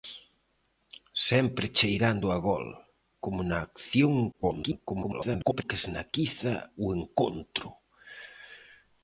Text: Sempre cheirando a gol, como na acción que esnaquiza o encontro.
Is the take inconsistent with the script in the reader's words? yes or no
yes